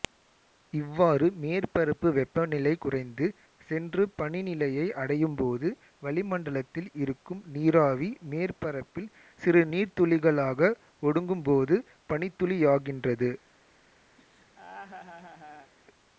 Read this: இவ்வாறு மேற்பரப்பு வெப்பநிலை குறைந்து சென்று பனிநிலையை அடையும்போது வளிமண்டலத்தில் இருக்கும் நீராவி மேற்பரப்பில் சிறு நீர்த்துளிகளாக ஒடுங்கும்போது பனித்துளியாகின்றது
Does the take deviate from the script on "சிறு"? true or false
false